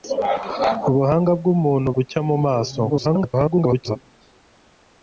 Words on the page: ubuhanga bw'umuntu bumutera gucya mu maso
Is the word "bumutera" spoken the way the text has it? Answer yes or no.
no